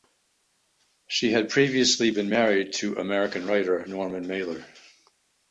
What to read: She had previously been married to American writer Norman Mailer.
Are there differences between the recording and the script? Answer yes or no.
no